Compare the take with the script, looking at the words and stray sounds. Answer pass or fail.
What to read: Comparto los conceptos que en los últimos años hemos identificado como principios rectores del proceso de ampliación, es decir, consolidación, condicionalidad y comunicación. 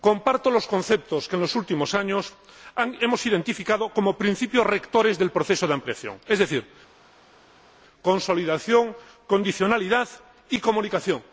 pass